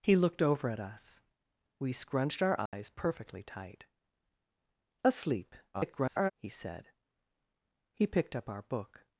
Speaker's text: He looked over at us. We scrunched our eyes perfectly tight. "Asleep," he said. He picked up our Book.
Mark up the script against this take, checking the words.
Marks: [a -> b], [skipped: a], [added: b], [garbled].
He looked over at us. We scrunched our eyes perfectly tight. "Asleep," [garbled] he said. He picked up our Book.